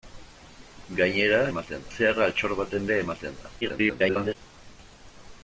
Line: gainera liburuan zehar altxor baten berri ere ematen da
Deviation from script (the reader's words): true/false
true